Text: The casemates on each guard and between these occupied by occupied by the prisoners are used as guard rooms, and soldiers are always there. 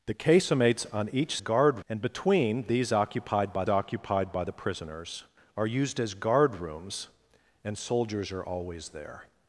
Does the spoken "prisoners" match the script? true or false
true